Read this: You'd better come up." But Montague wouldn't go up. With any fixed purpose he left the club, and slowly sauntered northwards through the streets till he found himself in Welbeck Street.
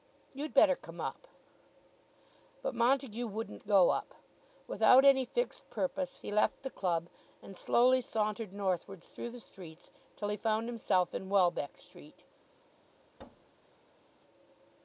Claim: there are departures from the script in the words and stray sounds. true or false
true